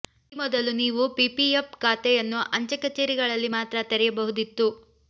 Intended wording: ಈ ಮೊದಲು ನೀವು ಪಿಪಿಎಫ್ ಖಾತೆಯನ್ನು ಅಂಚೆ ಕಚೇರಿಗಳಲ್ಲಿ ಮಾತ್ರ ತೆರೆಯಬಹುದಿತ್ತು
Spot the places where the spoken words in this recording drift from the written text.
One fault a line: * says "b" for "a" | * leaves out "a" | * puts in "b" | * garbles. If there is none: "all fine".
all fine